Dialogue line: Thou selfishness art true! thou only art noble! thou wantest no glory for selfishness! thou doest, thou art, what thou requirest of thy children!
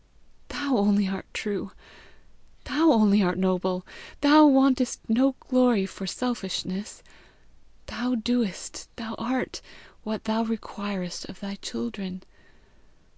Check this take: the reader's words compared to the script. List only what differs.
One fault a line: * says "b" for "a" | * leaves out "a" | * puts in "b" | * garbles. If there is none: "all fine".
* says "only" for "selfishness"